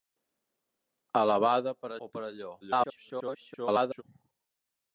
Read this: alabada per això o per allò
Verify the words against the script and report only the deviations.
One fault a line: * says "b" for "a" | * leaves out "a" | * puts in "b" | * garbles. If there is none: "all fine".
* leaves out "això"
* garbles